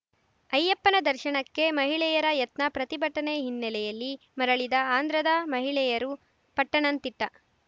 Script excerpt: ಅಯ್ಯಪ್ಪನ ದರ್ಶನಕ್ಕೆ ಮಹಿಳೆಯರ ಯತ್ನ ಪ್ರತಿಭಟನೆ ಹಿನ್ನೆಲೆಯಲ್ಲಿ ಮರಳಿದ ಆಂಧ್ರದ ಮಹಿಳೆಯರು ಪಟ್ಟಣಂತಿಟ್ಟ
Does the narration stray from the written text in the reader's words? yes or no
no